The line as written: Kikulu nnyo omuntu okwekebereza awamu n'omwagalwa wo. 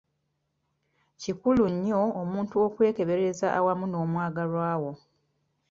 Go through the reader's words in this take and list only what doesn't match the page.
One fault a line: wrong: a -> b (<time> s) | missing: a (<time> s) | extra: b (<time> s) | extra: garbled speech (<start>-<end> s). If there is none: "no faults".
no faults